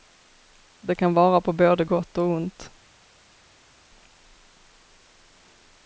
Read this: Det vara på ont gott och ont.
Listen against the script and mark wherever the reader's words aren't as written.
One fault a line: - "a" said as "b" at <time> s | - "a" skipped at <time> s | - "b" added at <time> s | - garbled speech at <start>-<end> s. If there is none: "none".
- "kan" added at 0.9 s
- "ont" said as "både" at 1.5 s